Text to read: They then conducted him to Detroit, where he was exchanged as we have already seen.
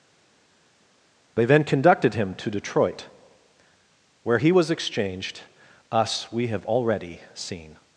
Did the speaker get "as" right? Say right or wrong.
wrong